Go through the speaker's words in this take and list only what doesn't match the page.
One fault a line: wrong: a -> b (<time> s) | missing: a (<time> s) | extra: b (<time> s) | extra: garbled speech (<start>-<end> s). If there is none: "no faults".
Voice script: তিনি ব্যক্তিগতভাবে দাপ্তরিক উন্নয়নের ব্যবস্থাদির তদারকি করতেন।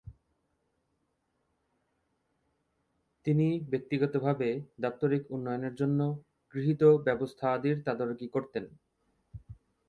extra: জন্য গৃহীত (5.8 s)